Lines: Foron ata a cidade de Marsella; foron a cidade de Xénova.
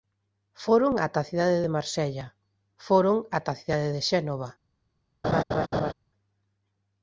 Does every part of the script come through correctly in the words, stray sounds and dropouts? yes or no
no